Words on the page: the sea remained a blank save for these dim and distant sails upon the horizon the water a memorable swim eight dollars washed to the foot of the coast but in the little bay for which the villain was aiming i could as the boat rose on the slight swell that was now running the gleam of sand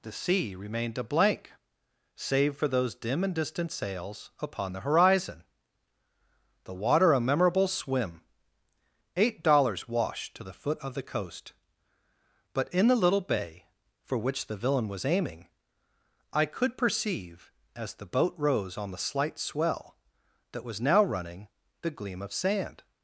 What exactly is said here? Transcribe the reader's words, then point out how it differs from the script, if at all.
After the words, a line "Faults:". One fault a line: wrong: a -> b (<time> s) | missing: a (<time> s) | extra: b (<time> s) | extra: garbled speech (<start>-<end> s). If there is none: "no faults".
the sea remained a blank save for those dim and distant sails upon the horizon the water a memorable swim eight dollars washed to the foot of the coast but in the little bay for which the villain was aiming i could perceive as the boat rose on the slight swell that was now running the gleam of sand
Faults:
wrong: these -> those (2.7 s)
extra: perceive (16.8 s)